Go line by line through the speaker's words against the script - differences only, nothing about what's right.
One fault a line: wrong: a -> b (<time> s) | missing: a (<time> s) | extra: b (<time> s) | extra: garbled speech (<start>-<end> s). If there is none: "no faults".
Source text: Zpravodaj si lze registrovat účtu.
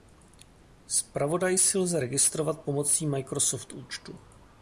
extra: pomocí Microsoft (2.6 s)